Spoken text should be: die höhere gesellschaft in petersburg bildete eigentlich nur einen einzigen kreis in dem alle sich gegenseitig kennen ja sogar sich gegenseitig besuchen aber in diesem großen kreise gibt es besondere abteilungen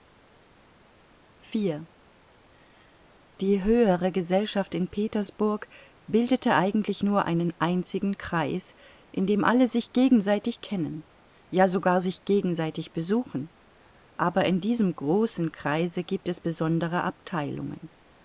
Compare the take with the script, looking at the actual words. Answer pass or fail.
pass